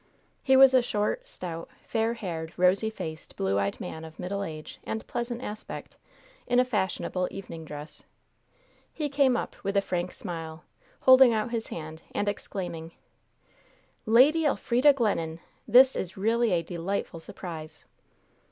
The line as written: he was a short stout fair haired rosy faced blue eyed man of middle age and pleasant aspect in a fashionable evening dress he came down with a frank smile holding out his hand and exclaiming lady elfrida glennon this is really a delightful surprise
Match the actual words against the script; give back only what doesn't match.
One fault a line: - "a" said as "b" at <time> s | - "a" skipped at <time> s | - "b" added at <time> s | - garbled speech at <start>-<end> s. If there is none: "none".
- "down" said as "up" at 9.4 s